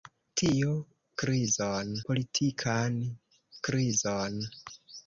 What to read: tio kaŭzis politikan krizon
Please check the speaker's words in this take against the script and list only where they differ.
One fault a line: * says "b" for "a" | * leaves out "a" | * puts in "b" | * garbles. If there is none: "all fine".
* says "krizon" for "kaŭzis"